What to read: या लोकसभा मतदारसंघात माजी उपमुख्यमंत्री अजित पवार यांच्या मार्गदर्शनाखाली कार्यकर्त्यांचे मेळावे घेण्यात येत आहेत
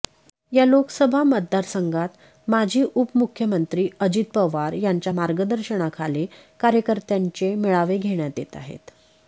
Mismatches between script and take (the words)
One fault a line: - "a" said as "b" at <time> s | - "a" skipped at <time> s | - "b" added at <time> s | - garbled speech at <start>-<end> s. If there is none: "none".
none